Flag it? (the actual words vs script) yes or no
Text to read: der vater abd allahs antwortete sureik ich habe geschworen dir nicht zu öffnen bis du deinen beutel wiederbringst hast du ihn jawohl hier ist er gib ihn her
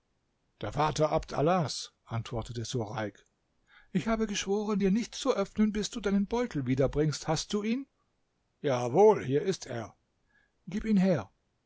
no